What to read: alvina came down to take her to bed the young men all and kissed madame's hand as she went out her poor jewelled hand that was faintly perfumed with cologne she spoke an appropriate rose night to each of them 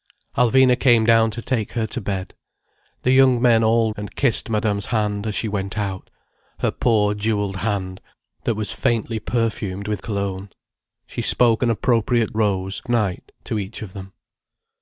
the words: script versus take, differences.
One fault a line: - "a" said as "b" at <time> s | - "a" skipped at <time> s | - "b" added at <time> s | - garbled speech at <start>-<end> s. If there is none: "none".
none